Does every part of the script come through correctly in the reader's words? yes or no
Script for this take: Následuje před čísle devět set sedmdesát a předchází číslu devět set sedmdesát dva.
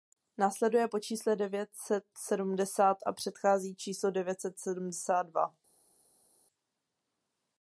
no